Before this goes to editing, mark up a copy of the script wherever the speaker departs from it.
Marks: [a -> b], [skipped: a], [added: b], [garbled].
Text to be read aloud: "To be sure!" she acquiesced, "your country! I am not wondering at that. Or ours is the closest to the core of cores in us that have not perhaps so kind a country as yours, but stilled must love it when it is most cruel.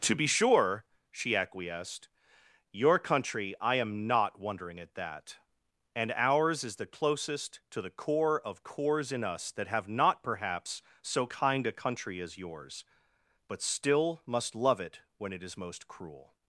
"To be sure!" she acquiesced, "your country! I am not wondering at that. [Or -> And] ours is the closest to the core of cores in us that have not perhaps so kind a country as yours, but [stilled -> still] must love it when it is most cruel.